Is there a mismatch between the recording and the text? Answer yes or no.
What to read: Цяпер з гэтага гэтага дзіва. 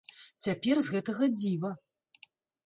yes